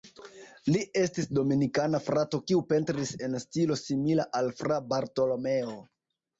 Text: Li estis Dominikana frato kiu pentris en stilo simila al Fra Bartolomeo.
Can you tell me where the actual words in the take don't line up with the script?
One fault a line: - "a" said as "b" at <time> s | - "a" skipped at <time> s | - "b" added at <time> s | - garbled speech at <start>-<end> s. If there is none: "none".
none